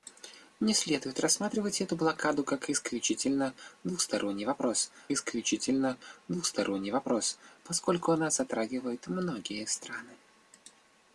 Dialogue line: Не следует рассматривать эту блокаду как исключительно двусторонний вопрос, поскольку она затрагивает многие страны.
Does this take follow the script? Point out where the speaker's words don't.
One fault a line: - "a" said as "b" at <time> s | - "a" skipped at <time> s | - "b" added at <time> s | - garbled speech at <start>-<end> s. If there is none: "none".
- "исключительно двусторонний вопрос" added at 5.1 s